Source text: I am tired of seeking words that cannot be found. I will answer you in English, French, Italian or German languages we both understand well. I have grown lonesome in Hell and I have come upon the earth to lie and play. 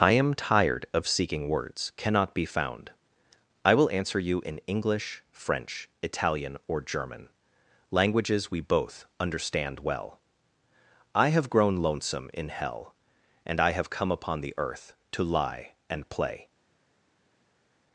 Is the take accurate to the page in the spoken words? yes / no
no